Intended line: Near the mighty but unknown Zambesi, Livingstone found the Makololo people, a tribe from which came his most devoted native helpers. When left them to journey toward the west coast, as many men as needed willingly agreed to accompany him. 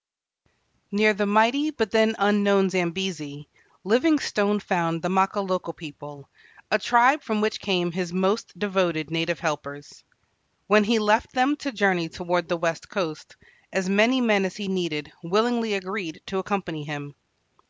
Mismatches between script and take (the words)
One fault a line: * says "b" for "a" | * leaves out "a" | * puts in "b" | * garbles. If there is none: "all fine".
* puts in "then"
* puts in "he"
* puts in "he"